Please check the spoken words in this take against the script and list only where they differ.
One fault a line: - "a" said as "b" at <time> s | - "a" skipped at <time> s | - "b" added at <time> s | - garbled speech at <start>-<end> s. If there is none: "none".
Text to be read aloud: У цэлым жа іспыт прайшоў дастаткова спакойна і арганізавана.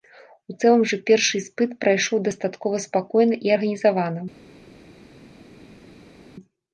- "першы" added at 1.1 s